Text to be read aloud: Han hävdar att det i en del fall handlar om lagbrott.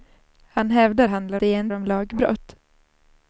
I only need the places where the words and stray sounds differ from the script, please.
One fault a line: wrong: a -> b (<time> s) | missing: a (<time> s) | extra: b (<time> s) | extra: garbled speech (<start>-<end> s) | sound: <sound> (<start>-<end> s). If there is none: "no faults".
wrong: att -> handlar (1.1 s)
missing: del fall handlar (1.7 s)